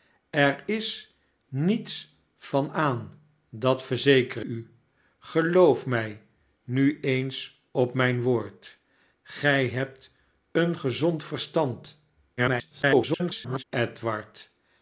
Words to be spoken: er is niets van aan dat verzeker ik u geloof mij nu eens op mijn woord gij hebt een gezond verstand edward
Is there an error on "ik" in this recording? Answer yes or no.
yes